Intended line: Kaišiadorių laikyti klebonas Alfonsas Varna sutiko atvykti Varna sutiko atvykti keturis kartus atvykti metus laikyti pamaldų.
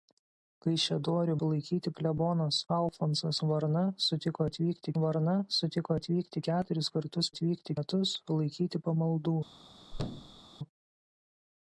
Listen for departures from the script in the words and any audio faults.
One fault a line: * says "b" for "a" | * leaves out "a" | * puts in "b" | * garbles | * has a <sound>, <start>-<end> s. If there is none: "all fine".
* has a thud, 9.9-10.4 s